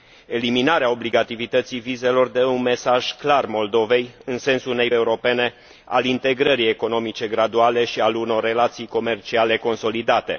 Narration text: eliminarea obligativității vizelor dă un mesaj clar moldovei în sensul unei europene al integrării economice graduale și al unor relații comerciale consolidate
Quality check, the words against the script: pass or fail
pass